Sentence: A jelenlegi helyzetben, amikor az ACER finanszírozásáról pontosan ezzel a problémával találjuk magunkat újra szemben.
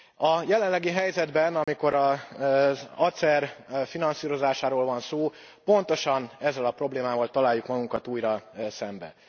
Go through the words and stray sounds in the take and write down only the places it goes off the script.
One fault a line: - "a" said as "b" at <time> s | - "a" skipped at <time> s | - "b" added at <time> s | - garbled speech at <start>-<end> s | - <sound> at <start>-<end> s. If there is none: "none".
- dropout at 1.6-1.7 s
- "van szó" added at 4.8 s